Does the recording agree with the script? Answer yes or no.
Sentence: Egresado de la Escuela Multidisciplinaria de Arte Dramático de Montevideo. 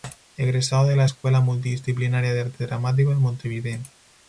yes